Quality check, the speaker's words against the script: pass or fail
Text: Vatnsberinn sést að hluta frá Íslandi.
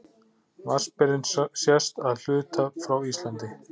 pass